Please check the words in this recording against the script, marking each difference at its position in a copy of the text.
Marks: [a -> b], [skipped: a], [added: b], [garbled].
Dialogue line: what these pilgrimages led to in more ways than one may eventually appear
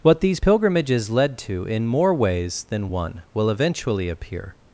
what these pilgrimages led to in more ways than one [may -> will] eventually appear